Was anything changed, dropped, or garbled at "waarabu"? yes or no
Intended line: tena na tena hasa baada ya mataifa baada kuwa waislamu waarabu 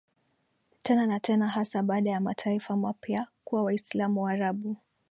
no